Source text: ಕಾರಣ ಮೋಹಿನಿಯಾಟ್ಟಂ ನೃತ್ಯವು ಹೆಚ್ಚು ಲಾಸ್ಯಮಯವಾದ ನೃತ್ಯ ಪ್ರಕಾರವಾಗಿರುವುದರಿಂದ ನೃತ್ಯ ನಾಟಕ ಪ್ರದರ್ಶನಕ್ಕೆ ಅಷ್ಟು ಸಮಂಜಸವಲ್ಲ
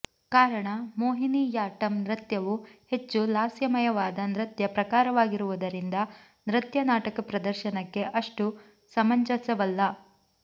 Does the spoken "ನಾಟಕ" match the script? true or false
true